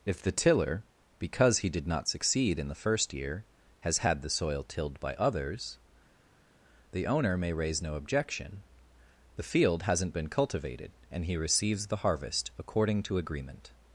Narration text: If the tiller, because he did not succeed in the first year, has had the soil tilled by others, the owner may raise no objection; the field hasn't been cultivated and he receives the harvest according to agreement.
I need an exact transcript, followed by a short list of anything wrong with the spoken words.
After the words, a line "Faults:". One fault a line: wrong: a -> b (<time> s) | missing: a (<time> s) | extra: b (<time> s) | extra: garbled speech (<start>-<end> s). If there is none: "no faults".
If the tiller, because he did not succeed in the first year, has had the soil tilled by others, the owner may raise no objection; the field hasn't been cultivated and he receives the harvest according to agreement.
Faults:
no faults